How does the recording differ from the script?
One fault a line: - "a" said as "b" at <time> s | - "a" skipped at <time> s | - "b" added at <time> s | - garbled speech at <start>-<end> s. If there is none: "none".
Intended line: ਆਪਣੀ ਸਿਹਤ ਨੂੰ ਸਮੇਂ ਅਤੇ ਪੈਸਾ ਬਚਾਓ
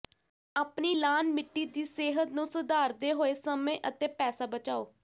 - "ਲਾਅਨ ਮਿੱਟੀ ਦੀ" added at 0.9 s
- "ਸੁਧਾਰਦੇ ਹੋਏ" added at 2.5 s